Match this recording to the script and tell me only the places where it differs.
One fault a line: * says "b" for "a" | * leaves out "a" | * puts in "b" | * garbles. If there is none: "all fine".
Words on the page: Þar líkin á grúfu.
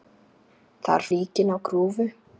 all fine